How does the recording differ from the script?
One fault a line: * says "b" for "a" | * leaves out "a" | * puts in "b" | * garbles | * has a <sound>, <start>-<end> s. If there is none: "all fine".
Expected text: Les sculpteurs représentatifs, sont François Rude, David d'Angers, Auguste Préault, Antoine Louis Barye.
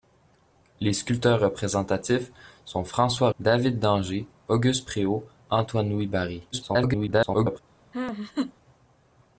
* leaves out "Rude"
* garbles
* has a laugh, 7.9-8.5 s